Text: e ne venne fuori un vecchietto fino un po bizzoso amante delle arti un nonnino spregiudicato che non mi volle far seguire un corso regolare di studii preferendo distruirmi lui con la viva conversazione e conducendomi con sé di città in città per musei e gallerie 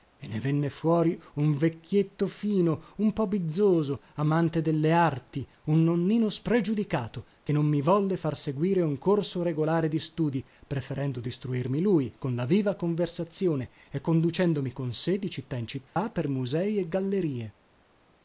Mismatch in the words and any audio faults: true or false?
true